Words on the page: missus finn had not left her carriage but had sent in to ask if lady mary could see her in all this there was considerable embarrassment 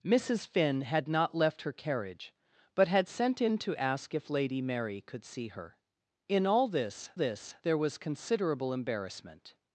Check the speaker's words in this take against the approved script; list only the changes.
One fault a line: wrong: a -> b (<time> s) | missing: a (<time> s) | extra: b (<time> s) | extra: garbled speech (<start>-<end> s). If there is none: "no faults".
extra: this (7.1 s)